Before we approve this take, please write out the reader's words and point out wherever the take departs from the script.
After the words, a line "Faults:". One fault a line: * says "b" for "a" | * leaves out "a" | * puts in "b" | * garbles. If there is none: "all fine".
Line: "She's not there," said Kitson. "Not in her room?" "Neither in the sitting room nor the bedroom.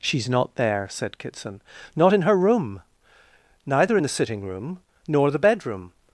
"She's not there," said Kitson. "Not in her room?" "Neither in the sitting room nor the bedroom.
Faults:
all fine